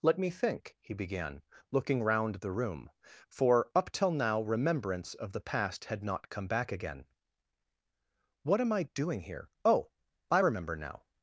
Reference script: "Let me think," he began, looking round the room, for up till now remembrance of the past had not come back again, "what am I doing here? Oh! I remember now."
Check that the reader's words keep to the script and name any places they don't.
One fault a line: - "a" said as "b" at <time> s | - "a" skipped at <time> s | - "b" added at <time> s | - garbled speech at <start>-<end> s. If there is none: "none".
none